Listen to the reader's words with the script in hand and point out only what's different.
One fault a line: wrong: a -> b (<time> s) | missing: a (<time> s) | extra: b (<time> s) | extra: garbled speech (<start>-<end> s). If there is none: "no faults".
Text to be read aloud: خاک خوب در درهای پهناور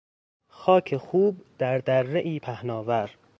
no faults